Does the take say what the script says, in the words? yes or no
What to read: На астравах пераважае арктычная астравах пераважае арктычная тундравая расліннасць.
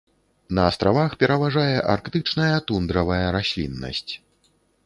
no